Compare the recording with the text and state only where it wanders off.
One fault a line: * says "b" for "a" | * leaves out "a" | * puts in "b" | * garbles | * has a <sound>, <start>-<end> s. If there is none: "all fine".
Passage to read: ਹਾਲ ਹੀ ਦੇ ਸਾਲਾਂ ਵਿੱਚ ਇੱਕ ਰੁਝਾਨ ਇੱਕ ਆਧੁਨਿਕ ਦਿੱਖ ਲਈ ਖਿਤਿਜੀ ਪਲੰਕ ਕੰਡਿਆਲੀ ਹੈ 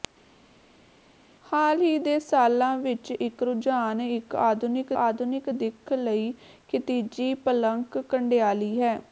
* puts in "ਆਧੁਨਿਕ"